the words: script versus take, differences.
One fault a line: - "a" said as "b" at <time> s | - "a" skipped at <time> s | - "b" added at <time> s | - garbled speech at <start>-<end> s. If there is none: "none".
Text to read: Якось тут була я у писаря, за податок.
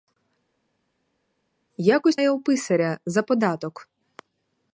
- "тут була" skipped at 2.2 s